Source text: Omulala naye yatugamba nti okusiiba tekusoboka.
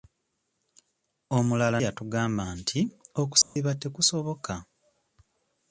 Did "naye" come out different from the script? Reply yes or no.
yes